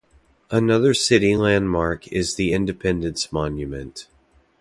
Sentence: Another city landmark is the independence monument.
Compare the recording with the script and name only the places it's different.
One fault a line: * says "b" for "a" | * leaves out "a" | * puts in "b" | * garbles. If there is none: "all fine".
all fine